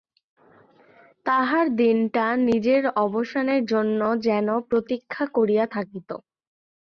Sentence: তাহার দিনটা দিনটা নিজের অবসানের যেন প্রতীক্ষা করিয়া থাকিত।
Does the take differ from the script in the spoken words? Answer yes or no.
yes